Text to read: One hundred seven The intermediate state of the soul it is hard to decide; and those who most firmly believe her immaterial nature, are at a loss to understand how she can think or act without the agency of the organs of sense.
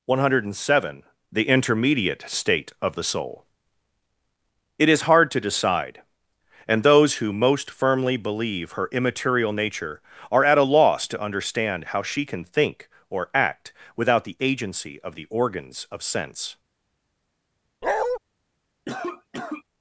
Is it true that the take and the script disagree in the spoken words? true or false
false